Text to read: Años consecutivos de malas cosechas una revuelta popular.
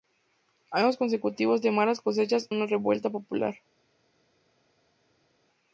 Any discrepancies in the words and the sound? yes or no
no